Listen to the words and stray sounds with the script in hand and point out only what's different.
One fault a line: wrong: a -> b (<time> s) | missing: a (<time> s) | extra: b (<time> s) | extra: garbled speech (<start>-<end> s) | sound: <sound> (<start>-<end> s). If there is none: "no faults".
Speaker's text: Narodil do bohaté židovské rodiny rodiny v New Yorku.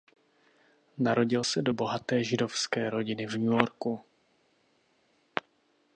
extra: se (1.4 s)
missing: rodiny (3.3 s)